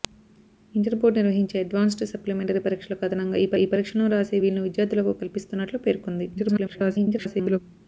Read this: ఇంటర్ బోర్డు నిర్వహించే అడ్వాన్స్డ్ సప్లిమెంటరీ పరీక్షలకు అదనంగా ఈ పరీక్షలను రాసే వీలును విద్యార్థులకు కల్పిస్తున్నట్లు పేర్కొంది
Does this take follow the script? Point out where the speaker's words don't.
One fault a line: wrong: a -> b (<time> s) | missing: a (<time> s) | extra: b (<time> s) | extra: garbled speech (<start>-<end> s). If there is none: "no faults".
extra: ఈ (3.6 s)
extra: garbled speech (6.4-7.6 s)